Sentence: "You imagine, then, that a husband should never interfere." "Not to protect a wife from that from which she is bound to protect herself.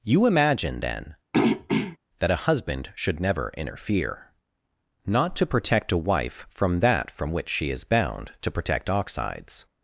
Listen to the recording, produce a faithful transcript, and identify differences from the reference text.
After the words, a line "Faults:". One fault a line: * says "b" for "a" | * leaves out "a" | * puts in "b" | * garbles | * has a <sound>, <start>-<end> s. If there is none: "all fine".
"You imagine, then, that a husband should never interfere." "Not to protect a wife from that from which she is bound to protect oxides.
Faults:
* has a throat clearing, 1.3-2.0 s
* says "oxides" for "herself"